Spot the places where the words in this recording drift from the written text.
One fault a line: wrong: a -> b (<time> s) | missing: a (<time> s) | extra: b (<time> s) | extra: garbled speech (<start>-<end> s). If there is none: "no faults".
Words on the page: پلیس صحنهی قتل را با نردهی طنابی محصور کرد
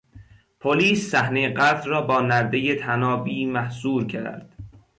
no faults